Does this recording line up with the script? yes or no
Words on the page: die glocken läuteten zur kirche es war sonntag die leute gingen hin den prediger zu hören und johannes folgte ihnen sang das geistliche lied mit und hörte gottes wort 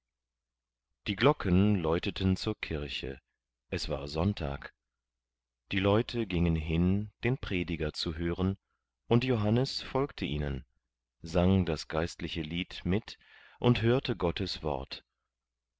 yes